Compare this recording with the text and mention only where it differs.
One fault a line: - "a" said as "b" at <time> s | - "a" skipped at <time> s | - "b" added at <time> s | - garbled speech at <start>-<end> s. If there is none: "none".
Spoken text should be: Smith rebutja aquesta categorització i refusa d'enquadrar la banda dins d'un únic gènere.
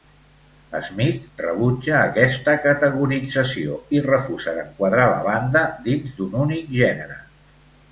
none